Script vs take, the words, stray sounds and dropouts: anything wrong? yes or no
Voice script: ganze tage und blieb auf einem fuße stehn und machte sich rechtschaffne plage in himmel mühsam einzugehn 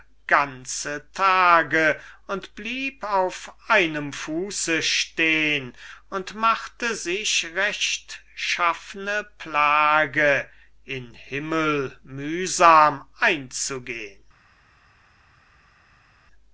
no